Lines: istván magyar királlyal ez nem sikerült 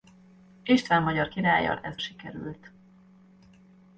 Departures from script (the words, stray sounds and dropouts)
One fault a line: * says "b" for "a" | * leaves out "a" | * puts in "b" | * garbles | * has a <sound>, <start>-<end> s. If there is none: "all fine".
* leaves out "nem"